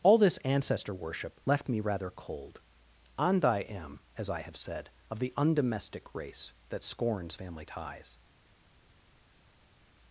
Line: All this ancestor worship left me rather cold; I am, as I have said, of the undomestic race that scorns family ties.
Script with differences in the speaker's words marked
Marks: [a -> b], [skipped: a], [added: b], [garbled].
All this ancestor worship left me rather cold; [added: and] I am, as I have said, of the undomestic race that scorns family ties.